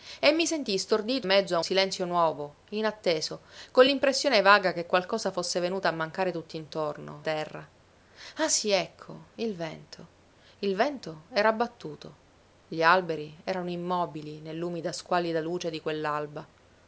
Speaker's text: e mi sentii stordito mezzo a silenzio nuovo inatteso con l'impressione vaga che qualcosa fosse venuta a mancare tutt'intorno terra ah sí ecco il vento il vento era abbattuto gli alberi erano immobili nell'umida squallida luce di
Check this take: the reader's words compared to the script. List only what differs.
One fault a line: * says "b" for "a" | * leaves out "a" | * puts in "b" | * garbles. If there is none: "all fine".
all fine